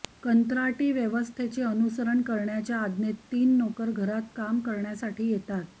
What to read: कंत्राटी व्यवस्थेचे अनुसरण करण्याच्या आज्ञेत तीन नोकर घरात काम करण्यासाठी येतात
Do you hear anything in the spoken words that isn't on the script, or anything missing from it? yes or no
no